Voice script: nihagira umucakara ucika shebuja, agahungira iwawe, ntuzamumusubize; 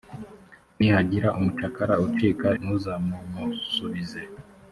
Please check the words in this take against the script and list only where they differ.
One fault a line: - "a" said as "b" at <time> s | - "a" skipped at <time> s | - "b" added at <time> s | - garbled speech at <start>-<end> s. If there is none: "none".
- "shebuja agahungira iwawe" skipped at 2.5 s